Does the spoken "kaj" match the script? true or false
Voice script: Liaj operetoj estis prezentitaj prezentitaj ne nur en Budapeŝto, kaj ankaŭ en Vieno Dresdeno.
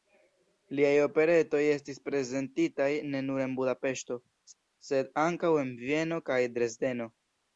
false